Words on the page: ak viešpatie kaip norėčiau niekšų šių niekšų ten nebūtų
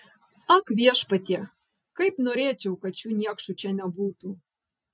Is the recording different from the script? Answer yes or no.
yes